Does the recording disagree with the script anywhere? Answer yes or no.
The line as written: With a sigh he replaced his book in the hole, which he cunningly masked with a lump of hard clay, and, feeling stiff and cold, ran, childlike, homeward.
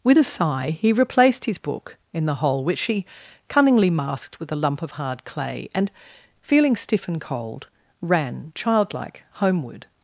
yes